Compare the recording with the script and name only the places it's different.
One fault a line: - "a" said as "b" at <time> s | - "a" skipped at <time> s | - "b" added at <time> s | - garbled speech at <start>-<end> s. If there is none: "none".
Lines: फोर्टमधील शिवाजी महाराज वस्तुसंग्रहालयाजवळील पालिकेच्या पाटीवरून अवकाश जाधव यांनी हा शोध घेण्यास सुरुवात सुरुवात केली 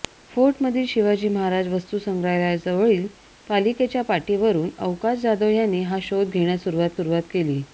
none